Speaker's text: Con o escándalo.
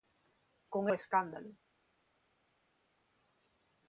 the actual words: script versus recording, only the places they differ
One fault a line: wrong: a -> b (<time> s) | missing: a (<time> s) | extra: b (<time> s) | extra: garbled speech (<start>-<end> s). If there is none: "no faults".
no faults